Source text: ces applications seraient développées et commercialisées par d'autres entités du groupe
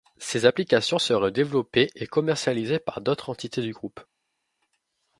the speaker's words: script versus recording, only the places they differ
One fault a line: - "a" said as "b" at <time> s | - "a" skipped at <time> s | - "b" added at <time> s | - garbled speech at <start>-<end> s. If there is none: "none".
none